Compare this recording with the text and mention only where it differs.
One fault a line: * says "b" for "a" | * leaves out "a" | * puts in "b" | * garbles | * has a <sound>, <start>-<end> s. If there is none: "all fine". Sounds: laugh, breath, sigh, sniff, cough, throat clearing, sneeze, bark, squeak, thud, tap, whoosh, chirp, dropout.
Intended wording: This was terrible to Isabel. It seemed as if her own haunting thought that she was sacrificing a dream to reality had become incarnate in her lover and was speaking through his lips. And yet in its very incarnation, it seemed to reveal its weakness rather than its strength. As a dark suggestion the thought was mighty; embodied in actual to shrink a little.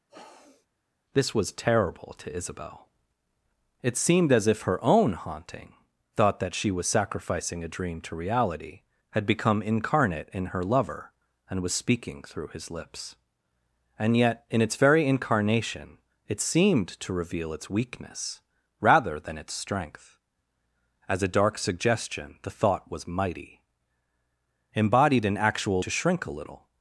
* has a sniff, 0.1-0.7 s